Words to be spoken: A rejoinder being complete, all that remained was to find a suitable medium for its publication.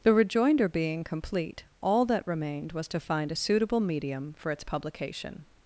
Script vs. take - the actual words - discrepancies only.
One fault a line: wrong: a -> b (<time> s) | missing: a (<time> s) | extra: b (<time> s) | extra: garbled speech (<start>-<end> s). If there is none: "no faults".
wrong: A -> The (0.0 s)